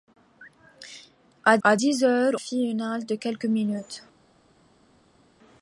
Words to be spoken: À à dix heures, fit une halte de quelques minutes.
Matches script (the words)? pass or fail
pass